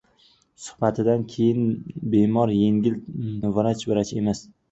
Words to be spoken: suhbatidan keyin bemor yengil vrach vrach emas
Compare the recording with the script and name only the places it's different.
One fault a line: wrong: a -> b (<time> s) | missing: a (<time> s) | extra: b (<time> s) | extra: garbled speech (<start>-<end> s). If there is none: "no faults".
no faults